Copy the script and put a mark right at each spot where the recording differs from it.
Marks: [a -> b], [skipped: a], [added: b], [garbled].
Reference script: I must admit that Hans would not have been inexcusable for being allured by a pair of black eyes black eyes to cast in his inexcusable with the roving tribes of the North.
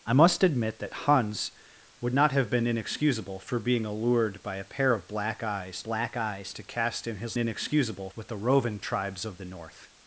I must admit that Hans would not have been inexcusable for being allured by a pair of black eyes black eyes to cast in his inexcusable with the roving tribes of the North.